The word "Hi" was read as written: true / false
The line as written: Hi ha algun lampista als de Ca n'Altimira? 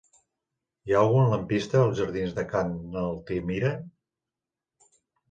true